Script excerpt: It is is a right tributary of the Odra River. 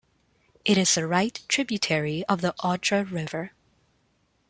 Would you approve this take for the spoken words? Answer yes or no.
no